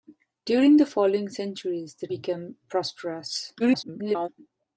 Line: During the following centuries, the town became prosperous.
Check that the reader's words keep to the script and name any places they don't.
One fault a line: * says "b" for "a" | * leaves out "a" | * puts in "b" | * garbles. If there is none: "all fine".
* leaves out "town"
* garbles